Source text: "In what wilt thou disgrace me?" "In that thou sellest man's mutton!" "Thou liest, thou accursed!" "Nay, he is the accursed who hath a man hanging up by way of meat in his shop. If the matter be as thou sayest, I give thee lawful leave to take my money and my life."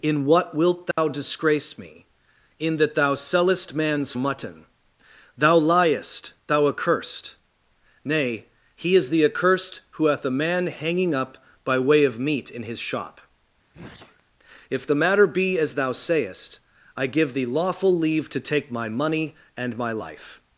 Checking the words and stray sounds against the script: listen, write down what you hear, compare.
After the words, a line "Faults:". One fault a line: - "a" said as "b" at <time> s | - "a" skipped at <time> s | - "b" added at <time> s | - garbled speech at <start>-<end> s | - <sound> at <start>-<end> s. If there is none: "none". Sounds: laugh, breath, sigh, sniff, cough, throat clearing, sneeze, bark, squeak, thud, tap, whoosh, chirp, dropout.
"In what wilt thou disgrace me?" "In that thou sellest man's mutton!" "Thou liest, thou accursed!" "Nay, he is the accursed who hath a man hanging up by way of meat in his shop. If the matter be as thou sayest, I give thee lawful leave to take my money and my life."
Faults:
- dropout at 0.9-1.0 s
- sneeze at 13.7-14.2 s